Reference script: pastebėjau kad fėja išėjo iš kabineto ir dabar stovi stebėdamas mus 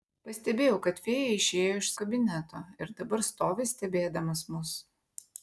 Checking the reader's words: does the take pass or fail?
pass